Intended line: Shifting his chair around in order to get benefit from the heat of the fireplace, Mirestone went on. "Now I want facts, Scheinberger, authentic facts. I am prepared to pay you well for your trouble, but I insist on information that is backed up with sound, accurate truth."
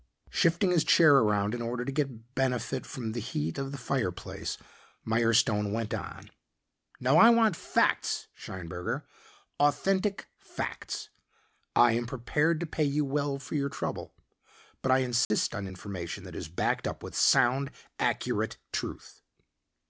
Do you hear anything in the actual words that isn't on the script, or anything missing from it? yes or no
no